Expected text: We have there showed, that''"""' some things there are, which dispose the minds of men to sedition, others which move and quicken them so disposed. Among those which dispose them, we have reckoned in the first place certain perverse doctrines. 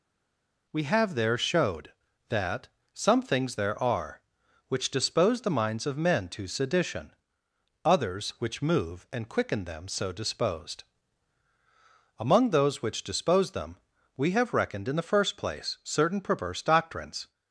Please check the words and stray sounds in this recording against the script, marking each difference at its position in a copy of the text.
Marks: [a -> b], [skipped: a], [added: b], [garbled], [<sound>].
We have there showed, that''"""' some things there are, which dispose the minds of men to sedition, others which move and quicken them so disposed. Among those which dispose them, we have reckoned in the first place certain perverse doctrines.